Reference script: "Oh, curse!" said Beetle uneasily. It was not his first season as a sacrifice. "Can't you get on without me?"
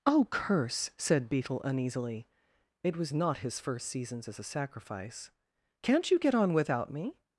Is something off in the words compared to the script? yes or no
yes